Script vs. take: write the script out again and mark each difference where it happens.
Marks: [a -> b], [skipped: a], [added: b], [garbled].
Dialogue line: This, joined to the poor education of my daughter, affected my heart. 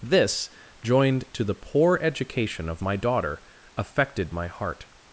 This, joined to the poor education of my daughter, affected my heart.